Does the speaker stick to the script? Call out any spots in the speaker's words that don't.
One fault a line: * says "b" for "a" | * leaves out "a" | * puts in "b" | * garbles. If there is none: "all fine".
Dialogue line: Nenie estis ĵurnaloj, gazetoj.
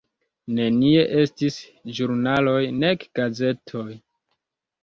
* puts in "nek"